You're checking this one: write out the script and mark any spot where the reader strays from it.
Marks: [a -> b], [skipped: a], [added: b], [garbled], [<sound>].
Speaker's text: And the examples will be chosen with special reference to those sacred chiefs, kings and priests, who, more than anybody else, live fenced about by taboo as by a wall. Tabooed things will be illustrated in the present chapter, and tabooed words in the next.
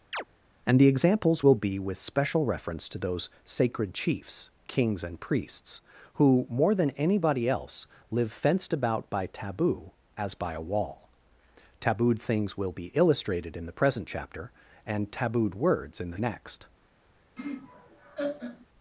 [chirp] And the examples will be [skipped: chosen] with special reference to those sacred chiefs, kings and priests, who, more than anybody else, live fenced about by taboo as by a wall. Tabooed things will be illustrated in the present chapter, and tabooed words in the next. [laugh]